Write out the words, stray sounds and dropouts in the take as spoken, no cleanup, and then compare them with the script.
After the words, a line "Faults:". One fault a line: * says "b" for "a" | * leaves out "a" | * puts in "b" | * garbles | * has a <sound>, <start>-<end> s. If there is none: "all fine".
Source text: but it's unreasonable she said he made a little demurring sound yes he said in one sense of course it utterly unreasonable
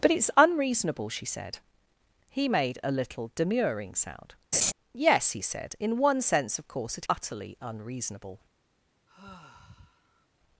but it's unreasonable she said he made a little demurring sound yes he said in one sense of course it utterly unreasonable
Faults:
* has a laugh, 4.5-4.7 s
* has a sigh, 9.1-10.3 s